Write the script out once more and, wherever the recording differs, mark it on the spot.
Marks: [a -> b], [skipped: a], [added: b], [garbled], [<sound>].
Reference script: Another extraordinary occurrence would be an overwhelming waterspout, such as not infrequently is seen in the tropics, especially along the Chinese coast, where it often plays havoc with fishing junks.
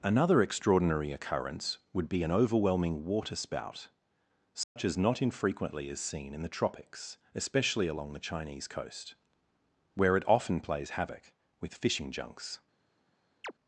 Another extraordinary occurrence would be an overwhelming waterspout, such [dropout] as not infrequently is seen in the tropics, especially along the Chinese coast, where it often plays havoc with fishing junks. [chirp]